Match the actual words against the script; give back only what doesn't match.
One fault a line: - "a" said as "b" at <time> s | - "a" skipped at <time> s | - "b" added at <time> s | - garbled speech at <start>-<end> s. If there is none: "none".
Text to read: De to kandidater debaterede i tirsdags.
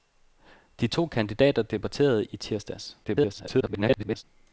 - garbled speech at 3.0-4.2 s